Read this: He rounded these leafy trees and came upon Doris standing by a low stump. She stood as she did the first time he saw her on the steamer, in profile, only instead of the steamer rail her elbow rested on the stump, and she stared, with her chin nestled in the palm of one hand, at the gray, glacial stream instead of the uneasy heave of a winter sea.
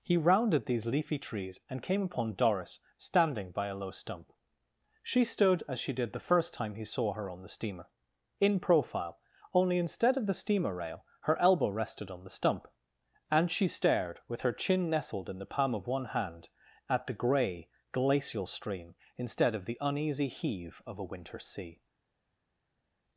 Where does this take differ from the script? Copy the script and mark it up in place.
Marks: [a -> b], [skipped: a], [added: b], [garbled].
He rounded these leafy trees and came upon Doris standing by a low stump. She stood as she did the first time he saw her on the steamer, in profile, only instead of the steamer rail her elbow rested on the stump, and she stared, with her chin nestled in the palm of one hand, at the gray, glacial stream instead of the uneasy heave of a winter sea.